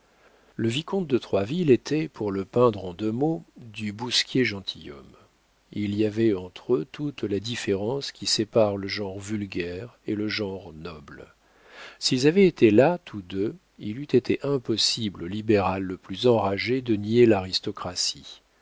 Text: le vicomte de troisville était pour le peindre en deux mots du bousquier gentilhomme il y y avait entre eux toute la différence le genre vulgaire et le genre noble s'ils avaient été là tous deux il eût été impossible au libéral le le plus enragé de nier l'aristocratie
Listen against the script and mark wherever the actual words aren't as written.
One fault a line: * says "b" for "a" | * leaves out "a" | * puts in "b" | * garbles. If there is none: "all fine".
* leaves out "y"
* puts in "qui sépare"
* leaves out "le"